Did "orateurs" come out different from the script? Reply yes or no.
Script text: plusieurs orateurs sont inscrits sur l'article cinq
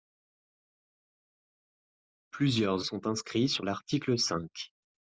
yes